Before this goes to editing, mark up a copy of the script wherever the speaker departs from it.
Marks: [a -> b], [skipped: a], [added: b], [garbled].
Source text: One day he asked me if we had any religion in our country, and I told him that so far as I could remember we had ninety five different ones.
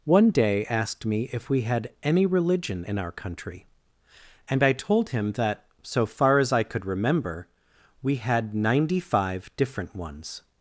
One day [skipped: he] asked me if we had any religion in our country, and I told him that so far as I could remember we had ninety five different ones.